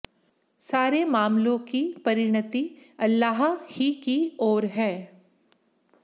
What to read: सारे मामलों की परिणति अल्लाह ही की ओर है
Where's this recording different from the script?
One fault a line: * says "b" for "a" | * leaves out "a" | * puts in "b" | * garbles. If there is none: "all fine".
all fine